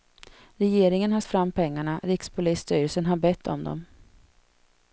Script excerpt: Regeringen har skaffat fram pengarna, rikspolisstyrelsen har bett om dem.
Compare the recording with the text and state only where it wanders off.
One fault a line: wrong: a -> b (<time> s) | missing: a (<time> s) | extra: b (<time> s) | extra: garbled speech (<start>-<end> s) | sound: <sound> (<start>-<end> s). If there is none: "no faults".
missing: skaffat (1.2 s)